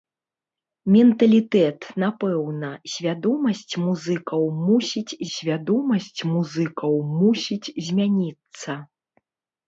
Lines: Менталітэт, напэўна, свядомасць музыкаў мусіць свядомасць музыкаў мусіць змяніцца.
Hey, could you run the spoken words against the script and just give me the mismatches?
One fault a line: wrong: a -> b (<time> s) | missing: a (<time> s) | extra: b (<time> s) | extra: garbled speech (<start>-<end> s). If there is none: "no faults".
no faults